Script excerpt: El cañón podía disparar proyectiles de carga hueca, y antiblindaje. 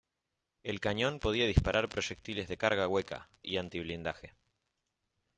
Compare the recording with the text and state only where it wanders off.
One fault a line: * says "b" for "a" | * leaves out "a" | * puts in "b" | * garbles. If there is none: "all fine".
all fine